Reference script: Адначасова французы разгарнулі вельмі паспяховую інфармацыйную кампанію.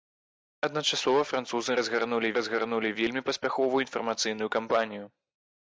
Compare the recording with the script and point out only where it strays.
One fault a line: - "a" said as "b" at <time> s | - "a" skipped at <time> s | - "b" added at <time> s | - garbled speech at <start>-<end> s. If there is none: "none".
- "разгарнулі" added at 2.4 s